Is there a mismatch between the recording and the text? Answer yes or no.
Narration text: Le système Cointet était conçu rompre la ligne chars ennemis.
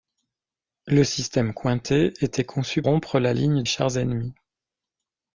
no